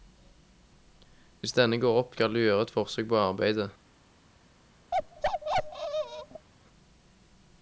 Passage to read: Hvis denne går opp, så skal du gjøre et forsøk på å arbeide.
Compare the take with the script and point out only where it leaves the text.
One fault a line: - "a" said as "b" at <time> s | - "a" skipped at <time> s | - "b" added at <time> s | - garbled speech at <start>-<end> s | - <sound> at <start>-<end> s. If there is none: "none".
- "så" skipped at 2.2 s
- bark at 4.9-6.5 s